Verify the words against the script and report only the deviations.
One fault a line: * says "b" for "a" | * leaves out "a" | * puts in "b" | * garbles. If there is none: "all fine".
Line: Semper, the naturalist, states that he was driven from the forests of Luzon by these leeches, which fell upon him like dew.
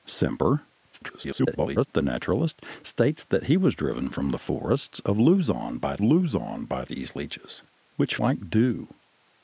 * garbles
* puts in "Luzon by"
* leaves out "fell upon him"